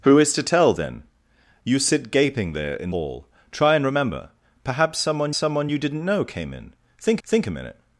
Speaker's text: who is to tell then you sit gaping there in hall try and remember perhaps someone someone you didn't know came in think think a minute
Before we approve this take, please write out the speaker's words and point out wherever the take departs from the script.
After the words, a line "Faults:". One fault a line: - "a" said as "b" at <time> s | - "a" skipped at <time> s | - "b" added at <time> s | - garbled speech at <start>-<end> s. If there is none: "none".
who is to tell then you sit gaping there in hall try and remember perhaps someone someone you didn't know came in think think a minute
Faults:
none